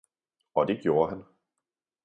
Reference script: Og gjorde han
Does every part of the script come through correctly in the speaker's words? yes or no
no